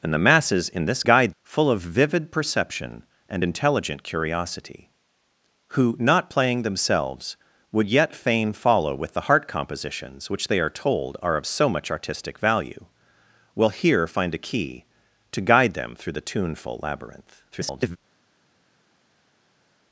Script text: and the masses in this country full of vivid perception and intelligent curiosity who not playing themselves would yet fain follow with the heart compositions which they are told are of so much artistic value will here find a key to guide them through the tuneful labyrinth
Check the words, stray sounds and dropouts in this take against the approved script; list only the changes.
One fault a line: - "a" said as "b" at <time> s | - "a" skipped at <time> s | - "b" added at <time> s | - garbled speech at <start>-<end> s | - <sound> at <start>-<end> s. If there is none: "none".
- "country" said as "guide" at 1.0 s
- garbled speech at 17.5-18.0 s